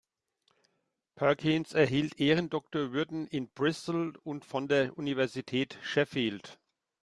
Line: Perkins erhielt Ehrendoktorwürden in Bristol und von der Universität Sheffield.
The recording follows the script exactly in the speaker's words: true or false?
true